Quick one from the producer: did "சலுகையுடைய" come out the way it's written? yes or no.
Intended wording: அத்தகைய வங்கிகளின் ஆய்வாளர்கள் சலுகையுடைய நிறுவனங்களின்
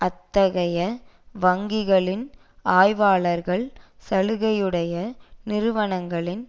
yes